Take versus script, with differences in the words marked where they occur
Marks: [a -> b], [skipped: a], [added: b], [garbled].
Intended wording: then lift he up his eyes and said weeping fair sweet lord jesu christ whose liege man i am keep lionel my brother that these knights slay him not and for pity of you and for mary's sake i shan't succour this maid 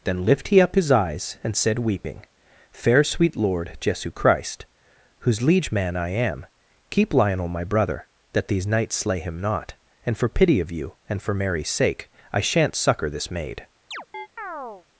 then lift he up his eyes and said weeping fair sweet lord jesu christ whose liege man i am keep lionel my brother that these knights slay him not and for pity of you and for mary's sake i shan't succour this maid